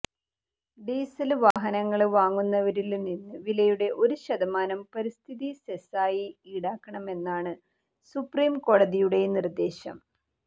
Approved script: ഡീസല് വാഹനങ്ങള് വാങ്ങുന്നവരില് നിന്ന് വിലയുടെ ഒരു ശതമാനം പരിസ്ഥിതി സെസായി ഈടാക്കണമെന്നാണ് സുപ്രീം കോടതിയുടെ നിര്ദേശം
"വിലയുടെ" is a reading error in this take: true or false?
false